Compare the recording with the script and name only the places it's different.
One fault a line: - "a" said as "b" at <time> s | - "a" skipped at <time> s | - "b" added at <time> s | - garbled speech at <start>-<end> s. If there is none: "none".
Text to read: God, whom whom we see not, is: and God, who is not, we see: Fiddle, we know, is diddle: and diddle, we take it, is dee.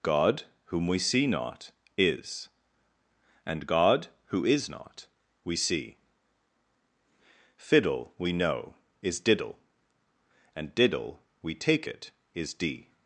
- "whom" skipped at 0.9 s